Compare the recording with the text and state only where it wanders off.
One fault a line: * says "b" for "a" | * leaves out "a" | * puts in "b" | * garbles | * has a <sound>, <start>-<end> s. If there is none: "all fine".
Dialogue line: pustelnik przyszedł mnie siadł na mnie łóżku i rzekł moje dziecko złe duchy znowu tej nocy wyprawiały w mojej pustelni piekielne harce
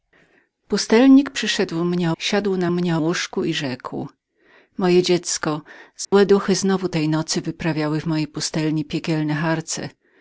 * has a dropout, 6.0-6.1 s